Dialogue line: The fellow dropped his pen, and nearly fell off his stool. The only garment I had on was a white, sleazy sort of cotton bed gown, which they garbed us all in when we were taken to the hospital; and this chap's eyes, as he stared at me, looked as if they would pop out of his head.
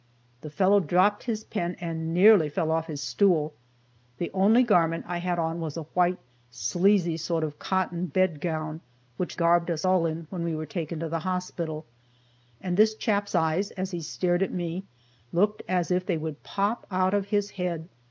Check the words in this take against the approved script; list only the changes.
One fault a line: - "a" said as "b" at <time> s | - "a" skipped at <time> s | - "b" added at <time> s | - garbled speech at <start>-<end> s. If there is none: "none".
- "they" skipped at 9.4 s